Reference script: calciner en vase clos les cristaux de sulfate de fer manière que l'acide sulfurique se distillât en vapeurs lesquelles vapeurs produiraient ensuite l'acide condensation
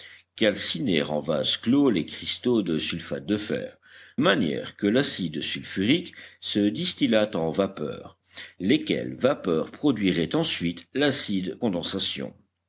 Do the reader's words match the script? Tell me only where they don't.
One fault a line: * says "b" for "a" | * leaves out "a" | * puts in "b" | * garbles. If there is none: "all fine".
all fine